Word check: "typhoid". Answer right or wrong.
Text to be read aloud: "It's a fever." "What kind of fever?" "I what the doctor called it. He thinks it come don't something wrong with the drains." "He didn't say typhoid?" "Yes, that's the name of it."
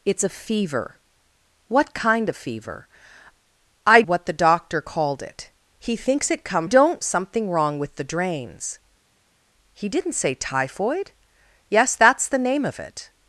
right